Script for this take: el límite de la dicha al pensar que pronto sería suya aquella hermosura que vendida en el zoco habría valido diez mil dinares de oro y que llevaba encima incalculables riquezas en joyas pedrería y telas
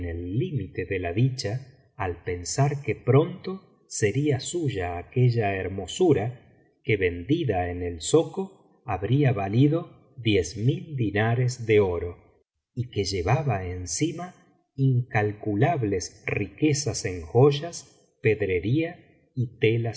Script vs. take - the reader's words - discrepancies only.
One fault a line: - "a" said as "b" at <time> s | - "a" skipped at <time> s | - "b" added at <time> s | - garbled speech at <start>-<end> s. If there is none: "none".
none